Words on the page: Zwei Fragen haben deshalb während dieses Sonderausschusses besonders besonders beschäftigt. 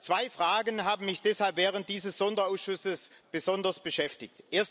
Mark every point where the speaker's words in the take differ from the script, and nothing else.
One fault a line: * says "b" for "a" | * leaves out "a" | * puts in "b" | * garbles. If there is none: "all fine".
* puts in "mich"
* leaves out "besonders"